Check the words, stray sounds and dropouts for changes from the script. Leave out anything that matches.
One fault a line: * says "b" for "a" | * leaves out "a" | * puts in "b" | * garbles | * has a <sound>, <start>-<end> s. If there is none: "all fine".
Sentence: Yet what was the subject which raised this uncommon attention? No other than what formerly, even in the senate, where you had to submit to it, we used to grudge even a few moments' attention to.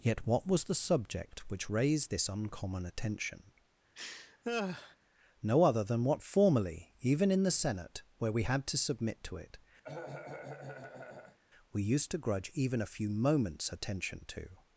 * has a laugh, 3.9-5.0 s
* says "we" for "you"
* has a cough, 9.8-11.4 s